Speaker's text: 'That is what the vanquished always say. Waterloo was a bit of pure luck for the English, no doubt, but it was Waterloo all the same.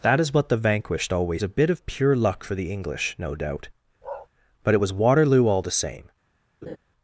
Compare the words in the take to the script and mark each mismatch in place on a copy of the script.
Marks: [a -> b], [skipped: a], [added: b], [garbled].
'That is what the vanquished always [skipped: say. Waterloo was] a bit of pure luck for the English, no doubt, but it was Waterloo all the same.